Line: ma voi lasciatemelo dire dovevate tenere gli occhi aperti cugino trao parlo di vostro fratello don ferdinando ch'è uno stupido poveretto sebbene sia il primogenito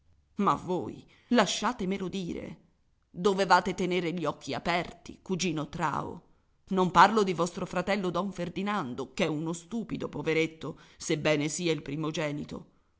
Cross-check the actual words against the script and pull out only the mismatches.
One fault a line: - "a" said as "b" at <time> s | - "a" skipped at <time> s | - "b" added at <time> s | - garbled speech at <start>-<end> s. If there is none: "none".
- "non" added at 6.7 s